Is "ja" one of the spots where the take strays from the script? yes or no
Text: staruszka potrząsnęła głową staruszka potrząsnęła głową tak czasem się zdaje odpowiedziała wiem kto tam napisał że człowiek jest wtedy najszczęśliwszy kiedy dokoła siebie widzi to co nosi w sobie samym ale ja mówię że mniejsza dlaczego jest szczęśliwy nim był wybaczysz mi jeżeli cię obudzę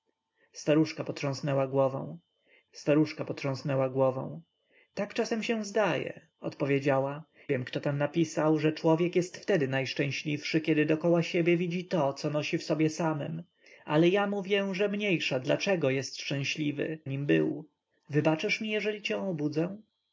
no